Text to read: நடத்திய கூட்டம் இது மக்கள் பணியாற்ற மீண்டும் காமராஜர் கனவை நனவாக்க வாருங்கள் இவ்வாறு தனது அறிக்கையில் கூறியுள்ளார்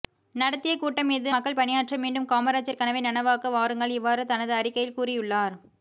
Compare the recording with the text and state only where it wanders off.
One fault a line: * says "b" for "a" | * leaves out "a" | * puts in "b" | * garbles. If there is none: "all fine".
all fine